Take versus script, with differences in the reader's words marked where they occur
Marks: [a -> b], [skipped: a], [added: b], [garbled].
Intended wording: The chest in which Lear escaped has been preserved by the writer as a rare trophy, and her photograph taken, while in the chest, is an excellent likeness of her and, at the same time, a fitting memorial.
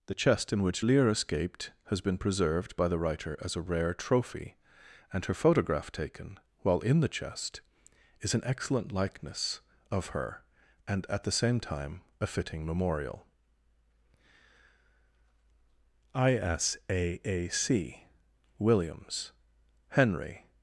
The chest in which Lear escaped has been preserved by the writer as a rare trophy, and her photograph taken, while in the chest, is an excellent likeness of her and, at the same time, a fitting memorial. [added: ISAAC WILLIAMS HENRY]